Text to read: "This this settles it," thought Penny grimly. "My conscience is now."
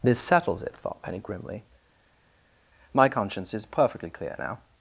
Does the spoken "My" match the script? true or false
true